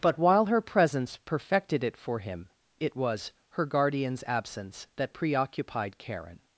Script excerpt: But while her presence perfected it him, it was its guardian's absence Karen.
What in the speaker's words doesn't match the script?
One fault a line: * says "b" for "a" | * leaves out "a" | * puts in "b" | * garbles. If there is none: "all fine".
* puts in "for"
* says "her" for "its"
* puts in "that preoccupied"